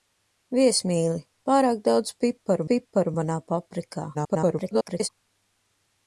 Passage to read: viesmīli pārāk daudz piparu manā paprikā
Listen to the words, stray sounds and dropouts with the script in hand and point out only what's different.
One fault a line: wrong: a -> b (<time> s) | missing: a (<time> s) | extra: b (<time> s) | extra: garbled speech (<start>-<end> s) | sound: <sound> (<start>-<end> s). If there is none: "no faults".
extra: piparu (2.7 s)
extra: garbled speech (4.1-5.1 s)